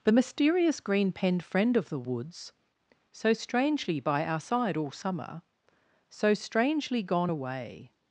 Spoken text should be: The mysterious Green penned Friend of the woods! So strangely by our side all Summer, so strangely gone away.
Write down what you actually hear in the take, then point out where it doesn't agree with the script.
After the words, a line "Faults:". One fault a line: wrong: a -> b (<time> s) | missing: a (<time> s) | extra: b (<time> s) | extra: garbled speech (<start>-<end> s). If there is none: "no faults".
The mysterious Green penned Friend of the woods! So strangely by our side all Summer, so strangely gone away.
Faults:
no faults